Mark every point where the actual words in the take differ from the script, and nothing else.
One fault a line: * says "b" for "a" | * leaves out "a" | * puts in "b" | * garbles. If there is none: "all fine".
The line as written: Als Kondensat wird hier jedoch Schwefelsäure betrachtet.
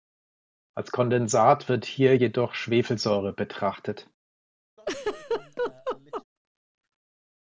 all fine